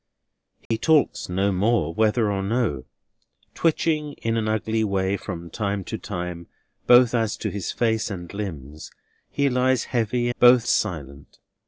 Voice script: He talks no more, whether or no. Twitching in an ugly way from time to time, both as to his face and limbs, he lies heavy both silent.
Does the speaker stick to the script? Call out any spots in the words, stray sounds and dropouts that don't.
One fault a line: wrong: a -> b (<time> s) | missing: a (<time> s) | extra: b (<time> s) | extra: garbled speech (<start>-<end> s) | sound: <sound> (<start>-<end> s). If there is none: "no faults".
sound: dropout (0.7-0.7 s)